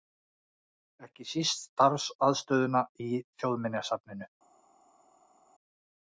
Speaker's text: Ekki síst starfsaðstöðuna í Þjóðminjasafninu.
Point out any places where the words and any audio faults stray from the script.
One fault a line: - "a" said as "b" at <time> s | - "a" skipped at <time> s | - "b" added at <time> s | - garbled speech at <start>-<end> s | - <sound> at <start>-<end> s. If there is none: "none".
none